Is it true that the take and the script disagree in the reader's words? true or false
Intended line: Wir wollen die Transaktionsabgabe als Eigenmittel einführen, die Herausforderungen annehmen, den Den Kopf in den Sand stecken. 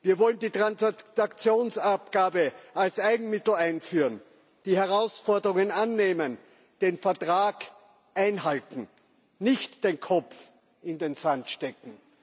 true